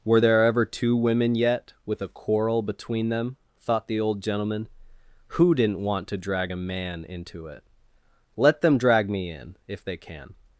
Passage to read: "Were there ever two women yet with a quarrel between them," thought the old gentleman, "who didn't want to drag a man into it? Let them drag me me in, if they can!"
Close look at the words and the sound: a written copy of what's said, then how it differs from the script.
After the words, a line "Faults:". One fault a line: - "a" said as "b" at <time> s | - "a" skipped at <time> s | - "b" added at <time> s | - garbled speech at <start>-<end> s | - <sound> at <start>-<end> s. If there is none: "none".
"Were there ever two women yet with a quarrel between them," thought the old gentleman, "who didn't want to drag a man into it? Let them drag me in, if they can!"
Faults:
- "me" skipped at 9.3 s